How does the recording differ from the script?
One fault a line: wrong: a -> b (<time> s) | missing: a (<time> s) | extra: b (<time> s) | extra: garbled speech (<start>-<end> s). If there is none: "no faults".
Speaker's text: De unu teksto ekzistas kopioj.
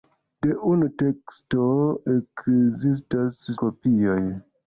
no faults